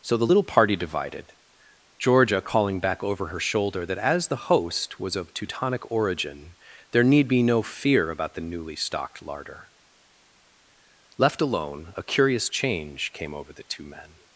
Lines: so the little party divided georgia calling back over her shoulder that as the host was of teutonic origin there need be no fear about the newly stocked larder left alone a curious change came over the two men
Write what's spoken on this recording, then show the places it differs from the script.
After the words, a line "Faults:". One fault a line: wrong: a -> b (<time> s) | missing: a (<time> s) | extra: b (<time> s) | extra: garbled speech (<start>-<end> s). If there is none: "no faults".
so the little party divided georgia calling back over her shoulder that as the host was of teutonic origin there need be no fear about the newly stocked larder left alone a curious change came over the two men
Faults:
no faults